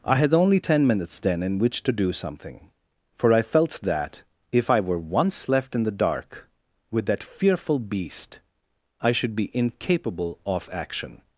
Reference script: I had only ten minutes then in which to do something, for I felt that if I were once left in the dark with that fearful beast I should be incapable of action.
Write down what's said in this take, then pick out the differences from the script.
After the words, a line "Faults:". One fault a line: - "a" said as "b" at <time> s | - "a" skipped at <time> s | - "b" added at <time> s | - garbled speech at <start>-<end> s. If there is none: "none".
I had only ten minutes then in which to do something, for I felt that if I were once left in the dark with that fearful beast I should be incapable of action.
Faults:
none